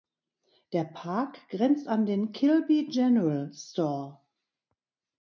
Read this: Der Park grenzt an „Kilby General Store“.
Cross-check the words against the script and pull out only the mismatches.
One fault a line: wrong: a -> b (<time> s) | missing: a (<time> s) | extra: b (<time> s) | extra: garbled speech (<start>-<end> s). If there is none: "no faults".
extra: den (2.1 s)